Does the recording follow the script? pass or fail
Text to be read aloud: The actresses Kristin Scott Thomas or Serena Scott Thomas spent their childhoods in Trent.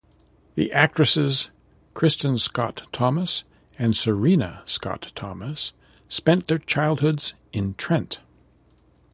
fail